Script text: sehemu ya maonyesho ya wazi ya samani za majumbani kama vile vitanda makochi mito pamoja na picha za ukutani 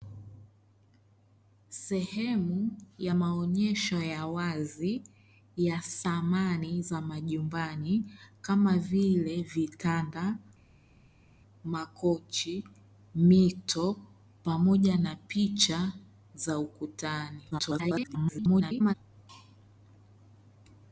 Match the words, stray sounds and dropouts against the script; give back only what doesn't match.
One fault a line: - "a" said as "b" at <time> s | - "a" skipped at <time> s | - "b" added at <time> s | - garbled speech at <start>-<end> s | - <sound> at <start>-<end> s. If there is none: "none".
- garbled speech at 17.5-18.9 s